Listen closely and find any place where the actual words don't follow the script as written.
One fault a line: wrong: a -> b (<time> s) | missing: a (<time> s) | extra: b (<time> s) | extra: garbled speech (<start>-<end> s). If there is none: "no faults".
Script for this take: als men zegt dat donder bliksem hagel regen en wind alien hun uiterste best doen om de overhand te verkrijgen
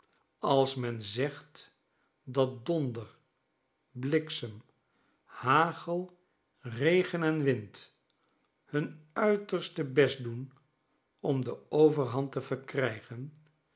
missing: alien (8.0 s)